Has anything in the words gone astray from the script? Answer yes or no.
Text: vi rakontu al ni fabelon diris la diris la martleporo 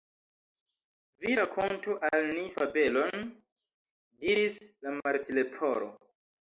yes